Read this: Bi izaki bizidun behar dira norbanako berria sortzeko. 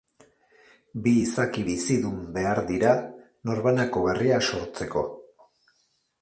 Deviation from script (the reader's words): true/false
false